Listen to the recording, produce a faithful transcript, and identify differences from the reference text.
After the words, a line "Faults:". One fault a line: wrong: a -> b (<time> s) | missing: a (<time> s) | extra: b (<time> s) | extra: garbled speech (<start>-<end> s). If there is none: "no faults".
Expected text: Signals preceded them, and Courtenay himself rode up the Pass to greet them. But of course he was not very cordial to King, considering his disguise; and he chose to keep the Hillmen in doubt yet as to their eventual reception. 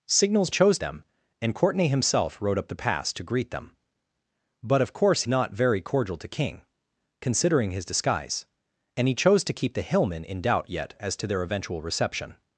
Signals chose them, and Courtenay himself rode up the Pass to greet them. But of course not very cordial to King, considering his disguise; and he chose to keep the Hillmen in doubt yet as to their eventual reception.
Faults:
wrong: preceded -> chose (0.5 s)
missing: he was (5.2 s)